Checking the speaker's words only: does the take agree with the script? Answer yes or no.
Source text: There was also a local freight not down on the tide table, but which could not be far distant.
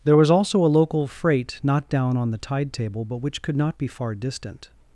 yes